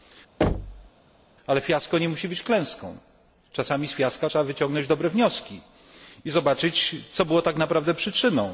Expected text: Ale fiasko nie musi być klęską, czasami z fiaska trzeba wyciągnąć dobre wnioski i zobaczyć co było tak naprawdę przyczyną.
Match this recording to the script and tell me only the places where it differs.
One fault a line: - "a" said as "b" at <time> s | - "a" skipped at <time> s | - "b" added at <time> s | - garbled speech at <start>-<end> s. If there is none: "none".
none